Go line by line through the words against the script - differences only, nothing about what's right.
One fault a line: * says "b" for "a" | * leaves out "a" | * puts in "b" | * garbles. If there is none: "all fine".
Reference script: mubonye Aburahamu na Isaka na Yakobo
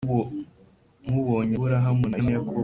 * leaves out "Isaka"